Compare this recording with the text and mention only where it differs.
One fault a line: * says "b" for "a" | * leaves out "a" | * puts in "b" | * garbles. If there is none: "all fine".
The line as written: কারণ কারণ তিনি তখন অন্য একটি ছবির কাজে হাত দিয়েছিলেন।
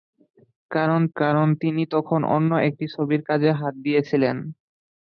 all fine